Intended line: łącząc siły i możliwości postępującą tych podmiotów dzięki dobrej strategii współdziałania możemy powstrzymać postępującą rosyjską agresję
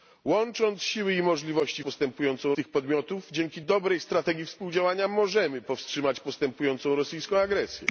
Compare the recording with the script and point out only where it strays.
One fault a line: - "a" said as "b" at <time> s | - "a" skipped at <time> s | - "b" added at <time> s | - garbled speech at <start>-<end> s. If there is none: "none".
none